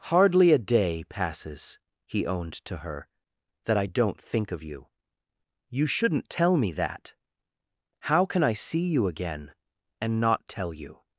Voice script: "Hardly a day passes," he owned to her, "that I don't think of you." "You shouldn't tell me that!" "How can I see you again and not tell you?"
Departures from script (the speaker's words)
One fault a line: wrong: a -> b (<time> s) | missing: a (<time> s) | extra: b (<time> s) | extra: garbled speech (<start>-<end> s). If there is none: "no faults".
no faults